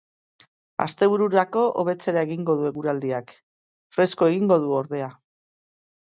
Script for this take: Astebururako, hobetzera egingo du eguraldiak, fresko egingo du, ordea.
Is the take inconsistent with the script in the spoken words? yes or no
no